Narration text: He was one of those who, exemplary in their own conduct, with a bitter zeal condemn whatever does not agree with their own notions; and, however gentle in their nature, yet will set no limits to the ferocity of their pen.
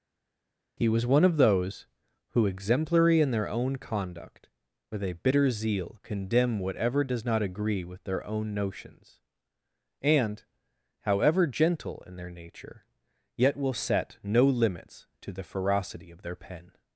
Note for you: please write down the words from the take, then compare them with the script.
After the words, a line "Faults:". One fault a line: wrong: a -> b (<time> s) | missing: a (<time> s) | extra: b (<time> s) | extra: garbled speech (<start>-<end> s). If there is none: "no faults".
He was one of those who, exemplary in their own conduct, with a bitter zeal condemn whatever does not agree with their own notions; and, however gentle in their nature, yet will set no limits to the ferocity of their pen.
Faults:
no faults